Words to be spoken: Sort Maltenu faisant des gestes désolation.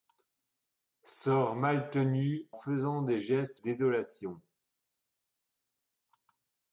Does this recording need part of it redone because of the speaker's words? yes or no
no